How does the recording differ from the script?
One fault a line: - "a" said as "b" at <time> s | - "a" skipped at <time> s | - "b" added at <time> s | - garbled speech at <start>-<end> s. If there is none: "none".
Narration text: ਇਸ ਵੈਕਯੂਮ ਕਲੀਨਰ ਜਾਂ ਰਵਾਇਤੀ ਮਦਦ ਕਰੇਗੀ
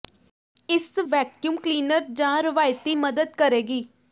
none